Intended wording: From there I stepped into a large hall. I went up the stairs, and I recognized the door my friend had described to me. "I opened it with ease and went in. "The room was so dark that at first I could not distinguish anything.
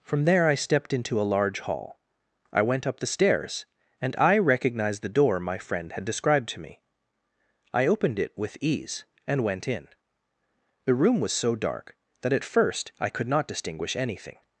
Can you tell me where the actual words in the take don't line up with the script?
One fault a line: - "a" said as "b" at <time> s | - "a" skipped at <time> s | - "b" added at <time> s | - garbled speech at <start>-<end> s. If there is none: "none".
none